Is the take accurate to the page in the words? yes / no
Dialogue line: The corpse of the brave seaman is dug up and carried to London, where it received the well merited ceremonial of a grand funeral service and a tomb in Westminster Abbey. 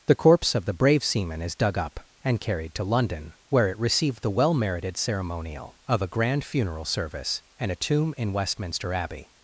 yes